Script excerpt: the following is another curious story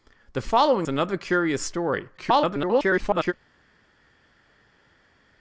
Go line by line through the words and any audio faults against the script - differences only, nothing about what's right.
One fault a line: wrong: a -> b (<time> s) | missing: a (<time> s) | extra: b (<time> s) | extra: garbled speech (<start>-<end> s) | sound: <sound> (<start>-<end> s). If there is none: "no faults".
missing: is (0.9 s)
extra: garbled speech (2.2-3.3 s)